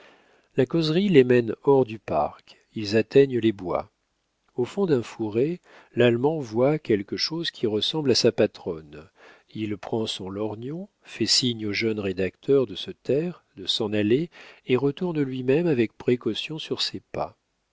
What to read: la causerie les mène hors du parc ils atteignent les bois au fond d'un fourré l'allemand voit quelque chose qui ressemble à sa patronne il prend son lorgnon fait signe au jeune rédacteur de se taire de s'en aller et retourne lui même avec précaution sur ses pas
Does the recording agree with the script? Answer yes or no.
yes